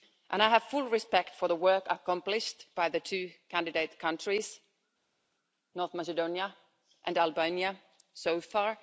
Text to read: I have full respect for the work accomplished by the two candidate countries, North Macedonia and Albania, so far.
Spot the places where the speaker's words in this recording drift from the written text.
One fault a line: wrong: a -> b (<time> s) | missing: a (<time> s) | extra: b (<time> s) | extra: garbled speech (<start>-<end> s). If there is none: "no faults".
no faults